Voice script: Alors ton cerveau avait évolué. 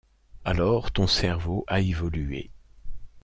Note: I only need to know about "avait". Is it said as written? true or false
false